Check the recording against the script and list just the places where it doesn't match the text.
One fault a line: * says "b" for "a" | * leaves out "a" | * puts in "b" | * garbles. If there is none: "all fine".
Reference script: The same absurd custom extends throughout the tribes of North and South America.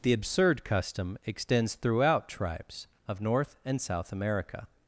* leaves out "same"
* leaves out "the"